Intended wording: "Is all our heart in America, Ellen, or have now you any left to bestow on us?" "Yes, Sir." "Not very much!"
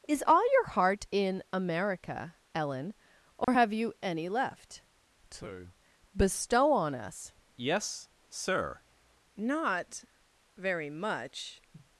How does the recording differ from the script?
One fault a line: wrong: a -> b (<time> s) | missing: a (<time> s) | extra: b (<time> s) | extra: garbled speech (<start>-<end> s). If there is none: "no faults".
wrong: our -> your (0.5 s)
missing: now (3.7 s)